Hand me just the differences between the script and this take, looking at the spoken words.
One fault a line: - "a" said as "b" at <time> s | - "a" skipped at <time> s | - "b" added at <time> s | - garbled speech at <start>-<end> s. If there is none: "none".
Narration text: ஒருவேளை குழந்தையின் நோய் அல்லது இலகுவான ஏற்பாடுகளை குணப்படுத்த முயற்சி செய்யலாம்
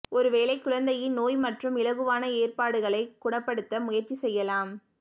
- "அல்லது" said as "மற்றும்" at 1.4 s